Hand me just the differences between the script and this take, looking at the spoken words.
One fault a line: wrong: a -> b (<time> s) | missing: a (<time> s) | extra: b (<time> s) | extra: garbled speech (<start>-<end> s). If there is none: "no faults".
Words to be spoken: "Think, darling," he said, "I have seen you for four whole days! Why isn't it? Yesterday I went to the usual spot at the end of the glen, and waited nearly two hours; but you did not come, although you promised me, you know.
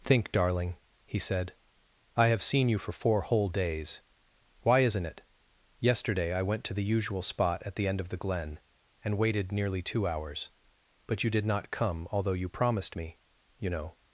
no faults